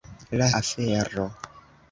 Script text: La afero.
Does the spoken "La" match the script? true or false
true